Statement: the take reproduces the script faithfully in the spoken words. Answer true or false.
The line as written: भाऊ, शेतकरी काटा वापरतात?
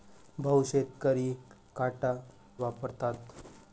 true